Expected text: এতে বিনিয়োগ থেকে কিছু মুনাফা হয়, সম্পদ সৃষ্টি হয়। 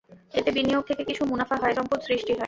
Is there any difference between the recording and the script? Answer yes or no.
no